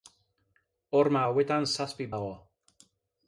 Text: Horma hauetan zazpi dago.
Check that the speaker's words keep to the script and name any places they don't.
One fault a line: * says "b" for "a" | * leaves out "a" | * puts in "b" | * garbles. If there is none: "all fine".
all fine